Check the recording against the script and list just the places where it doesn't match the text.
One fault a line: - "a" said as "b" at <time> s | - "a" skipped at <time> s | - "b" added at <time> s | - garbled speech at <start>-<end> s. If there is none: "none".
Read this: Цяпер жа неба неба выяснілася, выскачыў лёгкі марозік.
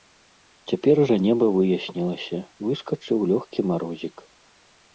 - "неба" skipped at 1.5 s